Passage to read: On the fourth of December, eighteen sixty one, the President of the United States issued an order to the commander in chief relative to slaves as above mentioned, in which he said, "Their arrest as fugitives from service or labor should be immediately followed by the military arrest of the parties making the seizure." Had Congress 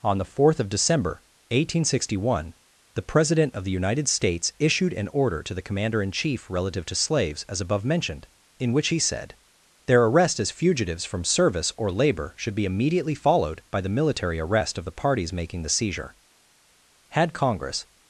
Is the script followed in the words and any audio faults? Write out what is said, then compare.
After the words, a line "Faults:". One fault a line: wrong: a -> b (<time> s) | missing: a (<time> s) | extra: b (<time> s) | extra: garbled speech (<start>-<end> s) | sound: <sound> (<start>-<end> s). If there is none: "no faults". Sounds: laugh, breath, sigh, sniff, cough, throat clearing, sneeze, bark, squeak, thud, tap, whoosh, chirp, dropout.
On the fourth of December, eighteen sixty one, the President of the United States issued an order to the commander in chief relative to slaves as above mentioned, in which he said, "Their arrest as fugitives from service or labor should be immediately followed by the military arrest of the parties making the seizure." Had Congress
Faults:
no faults